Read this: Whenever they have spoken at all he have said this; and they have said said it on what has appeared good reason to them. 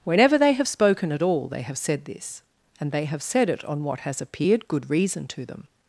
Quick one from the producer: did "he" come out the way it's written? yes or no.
no